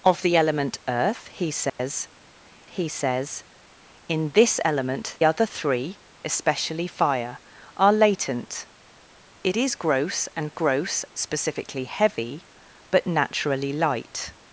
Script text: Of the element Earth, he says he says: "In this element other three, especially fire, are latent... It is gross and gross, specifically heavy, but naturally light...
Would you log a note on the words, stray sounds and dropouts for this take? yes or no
yes